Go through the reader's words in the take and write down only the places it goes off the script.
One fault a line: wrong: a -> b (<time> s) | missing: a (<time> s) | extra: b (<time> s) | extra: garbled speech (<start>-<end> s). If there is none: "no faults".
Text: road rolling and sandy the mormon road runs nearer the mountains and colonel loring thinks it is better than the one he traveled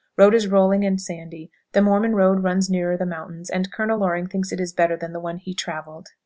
extra: is (0.3 s)